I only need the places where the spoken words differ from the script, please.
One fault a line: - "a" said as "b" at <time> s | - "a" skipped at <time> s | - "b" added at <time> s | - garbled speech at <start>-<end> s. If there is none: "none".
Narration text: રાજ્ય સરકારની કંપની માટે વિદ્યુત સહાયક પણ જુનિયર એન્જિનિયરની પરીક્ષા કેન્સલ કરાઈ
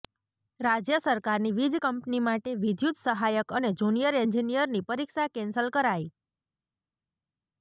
- "વીજ" added at 1.6 s
- "પણ" said as "અને" at 3.6 s